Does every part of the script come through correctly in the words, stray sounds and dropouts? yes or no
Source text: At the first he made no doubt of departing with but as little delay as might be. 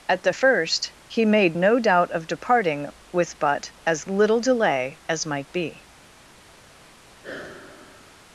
no